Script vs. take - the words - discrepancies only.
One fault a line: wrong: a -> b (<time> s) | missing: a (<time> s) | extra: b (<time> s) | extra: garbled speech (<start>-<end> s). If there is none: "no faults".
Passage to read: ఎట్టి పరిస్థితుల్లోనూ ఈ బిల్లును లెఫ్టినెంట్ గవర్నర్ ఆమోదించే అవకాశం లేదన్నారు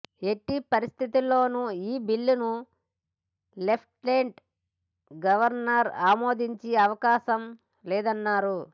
no faults